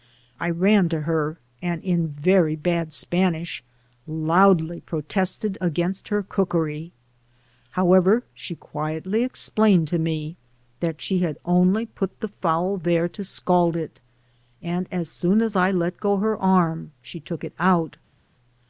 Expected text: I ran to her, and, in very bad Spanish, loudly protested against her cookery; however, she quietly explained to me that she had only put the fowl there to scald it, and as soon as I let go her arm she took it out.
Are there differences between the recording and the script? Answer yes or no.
no